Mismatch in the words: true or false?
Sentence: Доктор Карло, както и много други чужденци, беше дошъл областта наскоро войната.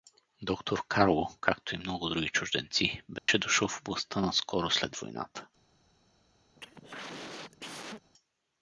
true